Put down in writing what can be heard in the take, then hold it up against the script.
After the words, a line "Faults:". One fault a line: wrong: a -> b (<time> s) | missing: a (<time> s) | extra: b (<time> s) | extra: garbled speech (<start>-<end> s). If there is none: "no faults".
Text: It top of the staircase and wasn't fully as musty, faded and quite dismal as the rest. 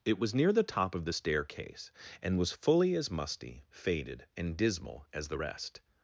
It was near the top of the staircase and was fully as musty, faded and dismal as the rest.
Faults:
extra: was near the (0.2 s)
wrong: wasn't -> was (2.4 s)
missing: quite (4.5 s)